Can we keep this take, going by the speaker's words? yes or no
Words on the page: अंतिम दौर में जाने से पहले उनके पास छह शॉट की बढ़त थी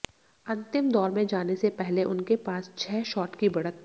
yes